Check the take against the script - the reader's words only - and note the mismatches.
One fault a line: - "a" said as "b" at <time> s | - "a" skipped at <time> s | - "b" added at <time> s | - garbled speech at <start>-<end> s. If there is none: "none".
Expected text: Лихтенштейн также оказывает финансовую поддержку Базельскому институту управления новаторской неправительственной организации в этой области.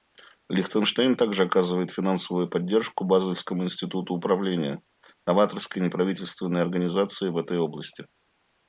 none